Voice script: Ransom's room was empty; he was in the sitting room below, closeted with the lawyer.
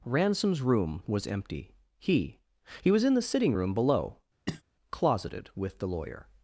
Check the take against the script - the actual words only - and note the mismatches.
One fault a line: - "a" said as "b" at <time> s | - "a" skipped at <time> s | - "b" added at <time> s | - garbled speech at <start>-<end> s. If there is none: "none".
- "he" added at 2.8 s